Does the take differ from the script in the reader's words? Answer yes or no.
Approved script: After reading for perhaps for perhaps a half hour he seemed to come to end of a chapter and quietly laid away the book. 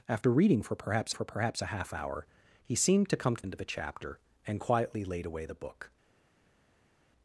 no